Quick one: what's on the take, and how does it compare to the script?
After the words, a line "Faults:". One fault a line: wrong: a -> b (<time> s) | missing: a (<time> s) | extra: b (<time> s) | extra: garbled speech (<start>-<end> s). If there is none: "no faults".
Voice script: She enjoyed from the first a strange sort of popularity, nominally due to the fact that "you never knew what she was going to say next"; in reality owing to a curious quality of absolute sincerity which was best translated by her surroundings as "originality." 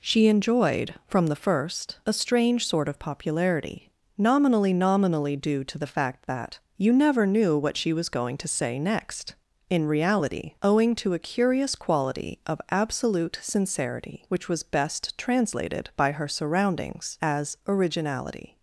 She enjoyed from the first a strange sort of popularity, nominally nominally due to the fact that "you never knew what she was going to say next"; in reality owing to a curious quality of absolute sincerity which was best translated by her surroundings as "originality."
Faults:
extra: nominally (4.7 s)